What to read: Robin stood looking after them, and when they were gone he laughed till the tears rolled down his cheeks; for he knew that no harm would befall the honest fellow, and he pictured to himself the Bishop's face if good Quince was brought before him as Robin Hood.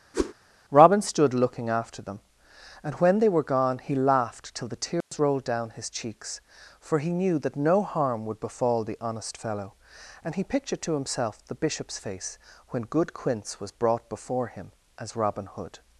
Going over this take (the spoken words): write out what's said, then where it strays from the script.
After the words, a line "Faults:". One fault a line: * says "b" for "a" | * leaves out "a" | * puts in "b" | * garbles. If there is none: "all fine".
Robin stood looking after them, and when they were gone he laughed till the tears rolled down his cheeks; for he knew that no harm would befall the honest fellow, and he pictured to himself the Bishop's face when good Quince was brought before him as Robin Hood.
Faults:
* says "when" for "if"